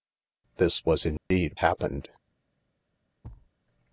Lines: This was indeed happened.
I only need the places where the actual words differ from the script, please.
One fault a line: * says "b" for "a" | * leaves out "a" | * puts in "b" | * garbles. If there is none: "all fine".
all fine